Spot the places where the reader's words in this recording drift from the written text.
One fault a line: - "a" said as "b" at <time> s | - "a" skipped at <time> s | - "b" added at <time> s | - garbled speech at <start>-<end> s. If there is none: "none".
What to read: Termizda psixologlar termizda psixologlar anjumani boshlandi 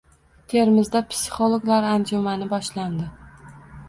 - "termizda psixologlar" skipped at 1.9 s